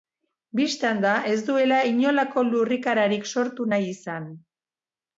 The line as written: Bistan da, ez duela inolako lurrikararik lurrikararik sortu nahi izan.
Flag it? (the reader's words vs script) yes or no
yes